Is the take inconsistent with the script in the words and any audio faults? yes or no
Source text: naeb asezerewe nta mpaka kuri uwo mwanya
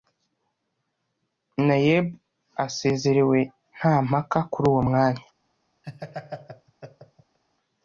yes